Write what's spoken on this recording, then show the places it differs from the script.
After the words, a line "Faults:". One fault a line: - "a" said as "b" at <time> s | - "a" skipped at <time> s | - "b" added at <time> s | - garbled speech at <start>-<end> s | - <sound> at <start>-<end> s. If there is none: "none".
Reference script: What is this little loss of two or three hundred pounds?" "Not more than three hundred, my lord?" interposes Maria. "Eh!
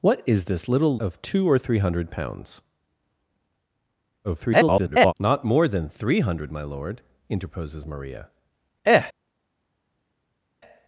What is this little of two or three hundred pounds?" [garbled] "Not more than three hundred, my lord?" interposes Maria. "Eh!
Faults:
- "loss" skipped at 1.0 s
- garbled speech at 4.2-5.1 s